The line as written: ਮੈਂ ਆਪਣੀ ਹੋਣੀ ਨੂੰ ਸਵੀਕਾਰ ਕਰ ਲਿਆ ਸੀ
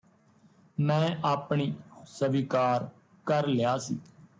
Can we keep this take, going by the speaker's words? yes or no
no